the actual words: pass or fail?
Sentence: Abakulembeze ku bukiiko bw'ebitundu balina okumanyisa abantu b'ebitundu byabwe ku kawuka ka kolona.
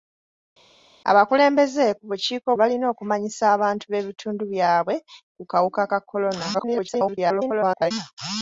fail